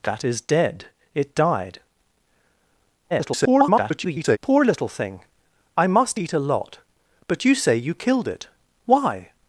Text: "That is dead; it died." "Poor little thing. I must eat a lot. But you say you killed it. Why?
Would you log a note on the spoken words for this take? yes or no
yes